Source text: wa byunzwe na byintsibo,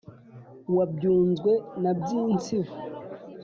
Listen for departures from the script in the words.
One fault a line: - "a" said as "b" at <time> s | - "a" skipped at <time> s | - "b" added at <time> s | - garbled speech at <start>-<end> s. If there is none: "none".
none